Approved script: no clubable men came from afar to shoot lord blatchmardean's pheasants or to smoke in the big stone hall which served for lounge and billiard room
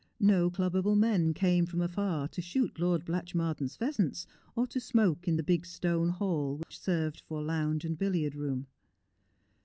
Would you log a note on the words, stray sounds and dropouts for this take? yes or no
yes